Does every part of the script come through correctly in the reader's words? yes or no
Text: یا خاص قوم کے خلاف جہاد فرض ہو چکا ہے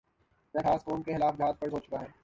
yes